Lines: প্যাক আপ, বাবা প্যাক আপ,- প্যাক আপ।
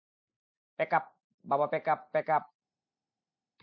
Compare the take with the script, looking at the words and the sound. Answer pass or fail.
pass